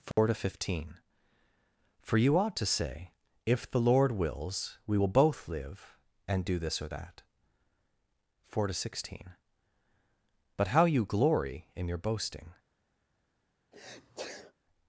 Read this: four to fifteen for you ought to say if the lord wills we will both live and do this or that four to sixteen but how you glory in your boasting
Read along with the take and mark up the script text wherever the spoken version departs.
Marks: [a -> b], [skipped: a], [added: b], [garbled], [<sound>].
four [dropout] to fifteen for you ought to say if the lord wills we will both live and do this or that four to sixteen but how you glory in your boasting [sneeze]